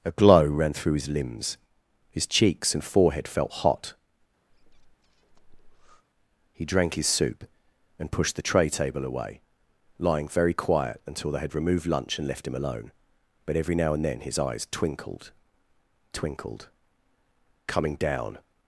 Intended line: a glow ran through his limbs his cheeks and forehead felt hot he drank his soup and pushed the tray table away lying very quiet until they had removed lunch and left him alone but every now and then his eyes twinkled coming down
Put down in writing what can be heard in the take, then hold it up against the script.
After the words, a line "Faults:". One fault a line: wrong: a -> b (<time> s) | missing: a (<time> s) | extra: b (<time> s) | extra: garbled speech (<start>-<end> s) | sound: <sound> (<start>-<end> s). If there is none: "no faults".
a glow ran through his limbs his cheeks and forehead felt hot he drank his soup and pushed the tray table away lying very quiet until they had removed lunch and left him alone but every now and then his eyes twinkled twinkled coming down
Faults:
sound: breath (4.5-6.0 s)
extra: twinkled (16.1 s)